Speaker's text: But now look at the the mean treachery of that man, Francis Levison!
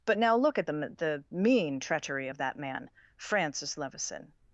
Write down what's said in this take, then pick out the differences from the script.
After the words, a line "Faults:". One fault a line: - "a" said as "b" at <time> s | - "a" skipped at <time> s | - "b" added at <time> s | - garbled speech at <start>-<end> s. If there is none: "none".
But now look at the the mean treachery of that man, Francis Levison!
Faults:
none